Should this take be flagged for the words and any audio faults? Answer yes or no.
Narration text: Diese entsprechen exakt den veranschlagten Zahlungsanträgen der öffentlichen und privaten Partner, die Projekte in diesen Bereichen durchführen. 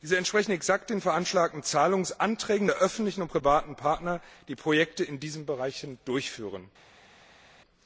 no